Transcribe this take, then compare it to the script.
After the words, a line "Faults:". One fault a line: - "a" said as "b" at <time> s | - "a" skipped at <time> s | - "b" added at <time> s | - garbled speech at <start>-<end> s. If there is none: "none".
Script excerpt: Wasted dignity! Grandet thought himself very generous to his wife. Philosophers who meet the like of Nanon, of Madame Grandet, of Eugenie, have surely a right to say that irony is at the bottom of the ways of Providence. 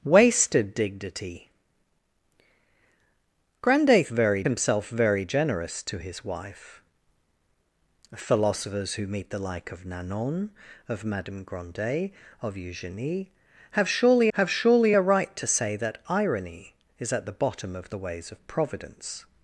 Wasted dignity! Grandet very himself very generous to his wife. Philosophers who meet the like of Nanon, of Madame Grandet, of Eugenie, have surely have surely a right to say that irony is at the bottom of the ways of Providence.
Faults:
- "thought" said as "very" at 4.1 s
- "have surely" added at 14.3 s